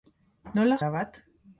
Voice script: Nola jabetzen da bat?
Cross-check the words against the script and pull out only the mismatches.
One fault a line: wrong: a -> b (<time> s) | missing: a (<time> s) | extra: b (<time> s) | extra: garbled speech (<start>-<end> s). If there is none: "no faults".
missing: jabetzen (0.8 s)